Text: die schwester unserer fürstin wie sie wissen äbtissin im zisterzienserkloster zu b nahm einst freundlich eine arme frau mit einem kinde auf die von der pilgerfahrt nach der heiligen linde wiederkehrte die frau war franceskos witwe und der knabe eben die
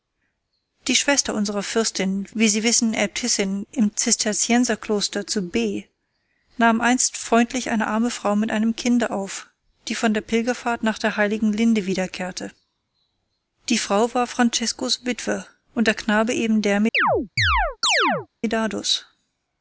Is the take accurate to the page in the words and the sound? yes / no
no